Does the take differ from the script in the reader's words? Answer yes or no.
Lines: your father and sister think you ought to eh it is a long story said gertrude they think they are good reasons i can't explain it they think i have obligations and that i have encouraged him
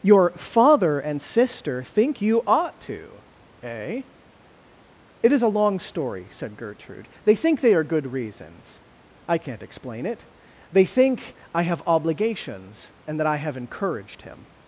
no